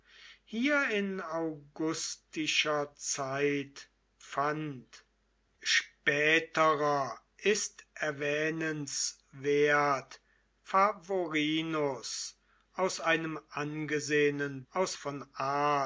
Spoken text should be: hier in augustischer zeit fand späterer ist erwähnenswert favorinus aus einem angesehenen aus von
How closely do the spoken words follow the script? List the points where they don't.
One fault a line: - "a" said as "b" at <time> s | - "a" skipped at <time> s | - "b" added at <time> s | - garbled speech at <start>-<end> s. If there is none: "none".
none